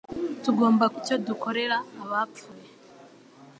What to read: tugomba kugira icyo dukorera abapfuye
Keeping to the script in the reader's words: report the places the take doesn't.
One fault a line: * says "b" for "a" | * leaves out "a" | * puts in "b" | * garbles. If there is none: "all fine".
* leaves out "kugira"